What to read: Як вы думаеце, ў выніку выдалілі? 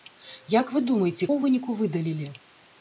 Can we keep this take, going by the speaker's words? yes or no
yes